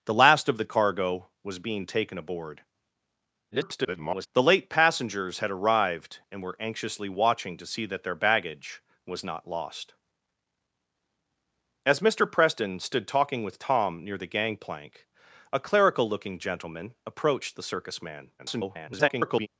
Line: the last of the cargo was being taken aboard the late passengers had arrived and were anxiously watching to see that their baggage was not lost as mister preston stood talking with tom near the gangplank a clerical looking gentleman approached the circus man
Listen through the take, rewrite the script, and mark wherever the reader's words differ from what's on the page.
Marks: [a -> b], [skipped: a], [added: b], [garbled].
the last of the cargo was being taken aboard [garbled] the late passengers had arrived and were anxiously watching to see that their baggage was not lost as mister preston stood talking with tom near the gangplank a clerical looking gentleman approached the circus man [garbled]